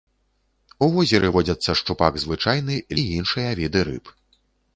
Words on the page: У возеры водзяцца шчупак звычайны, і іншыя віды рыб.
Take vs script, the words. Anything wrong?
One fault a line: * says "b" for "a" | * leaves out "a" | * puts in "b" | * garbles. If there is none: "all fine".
all fine